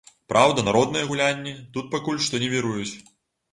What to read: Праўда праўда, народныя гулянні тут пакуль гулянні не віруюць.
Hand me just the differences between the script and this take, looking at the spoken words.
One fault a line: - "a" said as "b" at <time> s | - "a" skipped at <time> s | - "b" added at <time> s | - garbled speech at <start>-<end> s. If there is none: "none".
- "праўда" skipped at 0.6 s
- "гулянні" said as "што" at 2.3 s